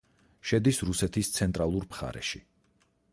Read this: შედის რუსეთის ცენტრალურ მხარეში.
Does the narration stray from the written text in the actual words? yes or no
no